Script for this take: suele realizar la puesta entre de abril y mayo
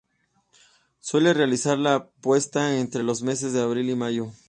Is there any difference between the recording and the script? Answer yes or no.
yes